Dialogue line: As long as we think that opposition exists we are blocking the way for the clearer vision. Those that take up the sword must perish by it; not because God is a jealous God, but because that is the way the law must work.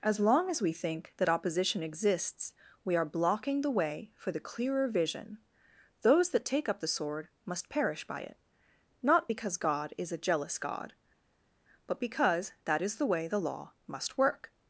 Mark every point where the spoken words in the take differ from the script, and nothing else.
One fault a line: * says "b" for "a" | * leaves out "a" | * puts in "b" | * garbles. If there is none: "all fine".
all fine